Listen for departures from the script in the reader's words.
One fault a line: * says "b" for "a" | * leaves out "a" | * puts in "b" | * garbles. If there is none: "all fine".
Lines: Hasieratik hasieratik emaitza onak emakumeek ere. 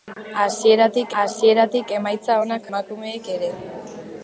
all fine